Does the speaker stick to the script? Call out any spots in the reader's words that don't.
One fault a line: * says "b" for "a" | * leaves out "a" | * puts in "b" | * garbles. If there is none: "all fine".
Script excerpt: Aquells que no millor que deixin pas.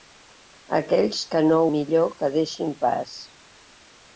all fine